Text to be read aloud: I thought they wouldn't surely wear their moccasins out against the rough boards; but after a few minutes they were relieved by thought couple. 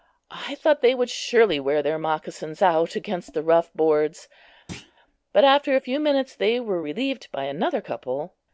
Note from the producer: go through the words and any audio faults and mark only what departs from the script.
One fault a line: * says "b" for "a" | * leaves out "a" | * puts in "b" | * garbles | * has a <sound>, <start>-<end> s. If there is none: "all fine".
* says "would" for "wouldn't"
* has a thud, 4.7-4.9 s
* says "another" for "thought"